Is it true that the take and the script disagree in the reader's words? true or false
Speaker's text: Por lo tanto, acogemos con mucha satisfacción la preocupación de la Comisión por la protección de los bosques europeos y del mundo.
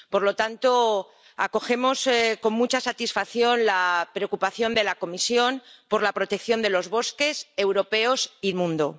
true